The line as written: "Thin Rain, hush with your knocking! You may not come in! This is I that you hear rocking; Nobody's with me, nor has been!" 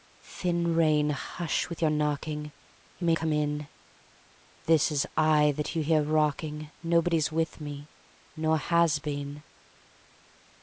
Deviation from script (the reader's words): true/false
true